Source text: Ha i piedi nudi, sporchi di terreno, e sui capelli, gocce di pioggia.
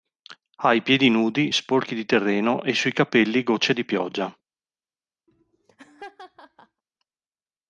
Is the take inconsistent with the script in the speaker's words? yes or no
no